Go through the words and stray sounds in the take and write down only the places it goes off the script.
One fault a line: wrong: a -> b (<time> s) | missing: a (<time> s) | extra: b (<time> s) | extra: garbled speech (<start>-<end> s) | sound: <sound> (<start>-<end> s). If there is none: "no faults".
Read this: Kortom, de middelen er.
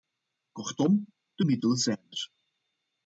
extra: zijn (1.8 s)